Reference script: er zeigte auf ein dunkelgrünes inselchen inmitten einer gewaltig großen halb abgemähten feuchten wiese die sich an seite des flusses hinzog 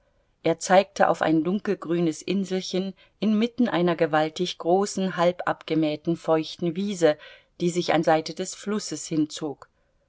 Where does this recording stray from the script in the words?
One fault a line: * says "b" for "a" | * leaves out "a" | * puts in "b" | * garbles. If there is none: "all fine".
all fine